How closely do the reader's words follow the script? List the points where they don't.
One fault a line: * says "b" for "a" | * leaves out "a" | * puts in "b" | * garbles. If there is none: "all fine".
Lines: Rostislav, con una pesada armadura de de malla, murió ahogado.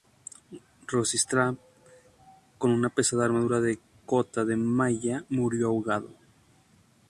* puts in "cota"